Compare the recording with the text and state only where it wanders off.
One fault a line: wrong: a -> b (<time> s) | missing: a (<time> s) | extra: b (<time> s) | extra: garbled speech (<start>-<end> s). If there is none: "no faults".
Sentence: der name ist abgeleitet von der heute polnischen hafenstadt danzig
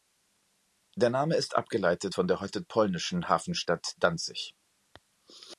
no faults